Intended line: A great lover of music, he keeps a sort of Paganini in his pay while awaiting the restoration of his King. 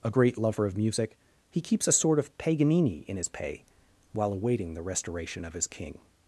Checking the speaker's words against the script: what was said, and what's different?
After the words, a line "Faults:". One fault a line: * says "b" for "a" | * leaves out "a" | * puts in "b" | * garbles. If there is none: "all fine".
A great lover of music, he keeps a sort of Paganini in his pay while awaiting the restoration of his King.
Faults:
all fine